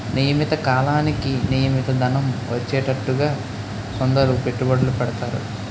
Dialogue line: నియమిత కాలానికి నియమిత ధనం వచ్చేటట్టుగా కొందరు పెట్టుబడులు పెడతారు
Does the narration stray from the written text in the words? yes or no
no